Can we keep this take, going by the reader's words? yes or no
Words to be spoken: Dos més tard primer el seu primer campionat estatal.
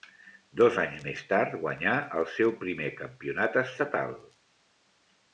no